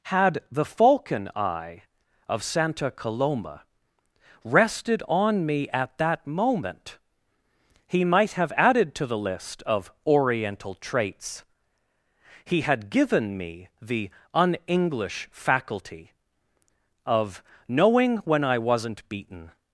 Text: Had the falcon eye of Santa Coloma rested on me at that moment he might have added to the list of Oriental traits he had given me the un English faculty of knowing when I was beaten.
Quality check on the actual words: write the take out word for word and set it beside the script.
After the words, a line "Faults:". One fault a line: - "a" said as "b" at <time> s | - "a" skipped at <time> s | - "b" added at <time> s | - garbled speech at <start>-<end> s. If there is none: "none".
Had the falcon eye of Santa Coloma rested on me at that moment he might have added to the list of Oriental traits he had given me the un English faculty of knowing when I wasn't beaten.
Faults:
- "was" said as "wasn't" at 18.6 s